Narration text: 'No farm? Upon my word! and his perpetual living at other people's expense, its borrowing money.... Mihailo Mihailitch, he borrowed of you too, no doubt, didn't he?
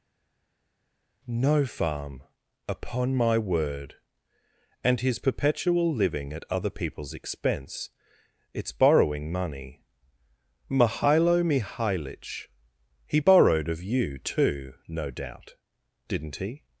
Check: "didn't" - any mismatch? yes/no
no